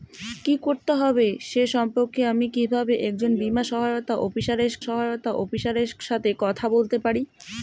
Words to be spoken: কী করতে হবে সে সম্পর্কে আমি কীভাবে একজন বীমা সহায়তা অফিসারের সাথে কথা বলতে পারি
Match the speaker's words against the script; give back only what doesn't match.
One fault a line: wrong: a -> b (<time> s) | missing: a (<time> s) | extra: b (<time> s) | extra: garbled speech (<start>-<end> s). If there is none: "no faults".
extra: সহায়তা অফিসারের (4.8 s)